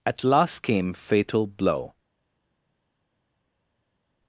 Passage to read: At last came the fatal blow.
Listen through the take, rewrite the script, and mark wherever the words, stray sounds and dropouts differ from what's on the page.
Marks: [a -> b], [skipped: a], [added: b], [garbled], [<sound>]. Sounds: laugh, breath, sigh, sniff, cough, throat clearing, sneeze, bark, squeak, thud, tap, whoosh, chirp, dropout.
At last came [skipped: the] fatal blow.